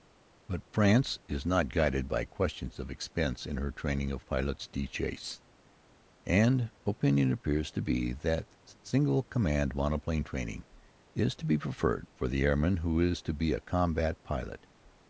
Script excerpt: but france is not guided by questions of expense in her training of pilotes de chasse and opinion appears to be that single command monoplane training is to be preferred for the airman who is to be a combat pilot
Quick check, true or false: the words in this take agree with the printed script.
true